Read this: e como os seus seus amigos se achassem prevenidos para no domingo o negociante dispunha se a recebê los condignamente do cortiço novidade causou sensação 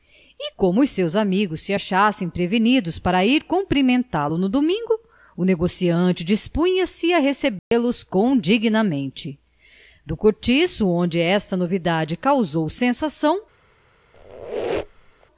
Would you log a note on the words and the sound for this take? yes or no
yes